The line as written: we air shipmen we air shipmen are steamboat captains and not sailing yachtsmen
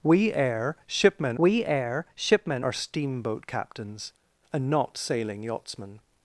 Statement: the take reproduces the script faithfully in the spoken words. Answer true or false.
true